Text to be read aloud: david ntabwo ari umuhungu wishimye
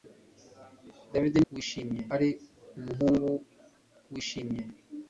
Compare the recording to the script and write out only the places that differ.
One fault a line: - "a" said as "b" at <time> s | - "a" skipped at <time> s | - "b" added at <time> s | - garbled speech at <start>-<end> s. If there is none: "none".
- "ntabwo" said as "wishimye" at 1.5 s